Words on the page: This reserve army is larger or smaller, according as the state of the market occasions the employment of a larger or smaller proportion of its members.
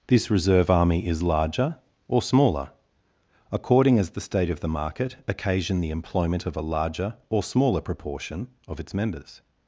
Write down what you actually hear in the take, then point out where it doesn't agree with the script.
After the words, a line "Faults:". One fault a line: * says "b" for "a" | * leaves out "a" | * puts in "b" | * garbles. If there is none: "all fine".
This reserve army is larger or smaller, according as the state of the market occasion the employment of a larger or smaller proportion of its members.
Faults:
* says "occasion" for "occasions"